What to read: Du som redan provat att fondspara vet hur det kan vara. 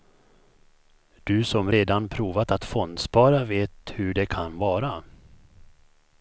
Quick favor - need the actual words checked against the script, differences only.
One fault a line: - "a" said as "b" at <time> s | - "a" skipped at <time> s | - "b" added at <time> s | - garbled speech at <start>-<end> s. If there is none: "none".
none